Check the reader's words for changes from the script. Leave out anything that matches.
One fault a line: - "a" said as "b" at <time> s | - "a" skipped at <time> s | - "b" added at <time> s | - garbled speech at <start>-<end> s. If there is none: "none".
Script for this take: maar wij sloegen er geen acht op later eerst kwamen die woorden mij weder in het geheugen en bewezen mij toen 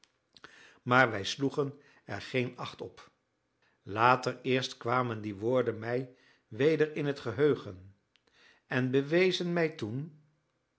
none